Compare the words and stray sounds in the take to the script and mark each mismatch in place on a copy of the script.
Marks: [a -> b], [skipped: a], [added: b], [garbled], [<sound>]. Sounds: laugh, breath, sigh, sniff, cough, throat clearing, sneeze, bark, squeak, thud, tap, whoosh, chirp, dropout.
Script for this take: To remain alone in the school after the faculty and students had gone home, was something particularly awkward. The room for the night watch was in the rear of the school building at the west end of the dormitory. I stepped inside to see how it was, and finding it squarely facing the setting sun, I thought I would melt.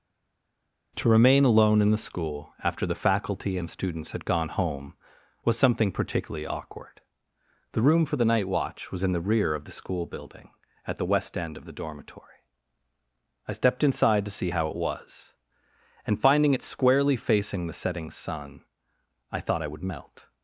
To remain alone in the school after the faculty and students had gone home, was something particularly awkward. The room for the night watch was in the rear of the school building at the west end of the dormitory. I stepped inside to see how it was, and finding it squarely facing the setting sun, I thought I would melt.